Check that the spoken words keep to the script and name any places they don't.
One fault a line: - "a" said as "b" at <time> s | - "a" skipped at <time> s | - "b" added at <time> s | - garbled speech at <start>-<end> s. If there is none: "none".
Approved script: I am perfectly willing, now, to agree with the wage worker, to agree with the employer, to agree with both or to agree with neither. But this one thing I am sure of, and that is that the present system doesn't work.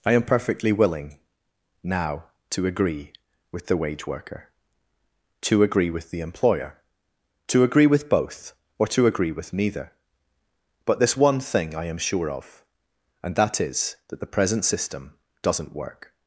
none